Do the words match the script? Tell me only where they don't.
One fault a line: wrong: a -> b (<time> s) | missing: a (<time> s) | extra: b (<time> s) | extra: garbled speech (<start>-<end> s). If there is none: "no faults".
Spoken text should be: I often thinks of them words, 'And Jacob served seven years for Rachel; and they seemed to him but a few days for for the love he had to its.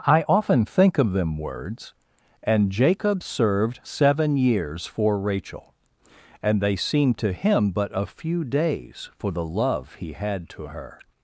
wrong: thinks -> think (0.7 s)
missing: for (9.3 s)
wrong: its -> her (10.7 s)